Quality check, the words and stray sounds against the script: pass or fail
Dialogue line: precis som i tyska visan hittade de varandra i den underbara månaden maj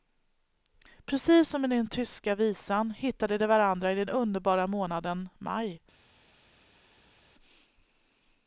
fail